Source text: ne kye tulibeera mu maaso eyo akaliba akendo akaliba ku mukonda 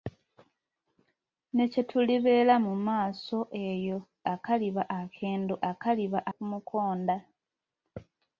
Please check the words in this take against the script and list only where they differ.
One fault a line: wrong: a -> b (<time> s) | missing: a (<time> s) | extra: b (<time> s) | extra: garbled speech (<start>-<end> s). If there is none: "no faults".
no faults